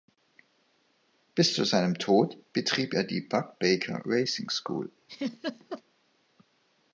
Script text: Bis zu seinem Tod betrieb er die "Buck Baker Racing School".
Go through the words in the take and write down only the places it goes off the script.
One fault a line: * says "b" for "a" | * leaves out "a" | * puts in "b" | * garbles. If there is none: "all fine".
all fine